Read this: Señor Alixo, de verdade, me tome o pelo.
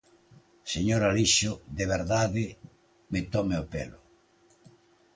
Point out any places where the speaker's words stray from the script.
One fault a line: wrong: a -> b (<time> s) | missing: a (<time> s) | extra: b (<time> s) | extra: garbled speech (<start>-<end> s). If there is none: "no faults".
no faults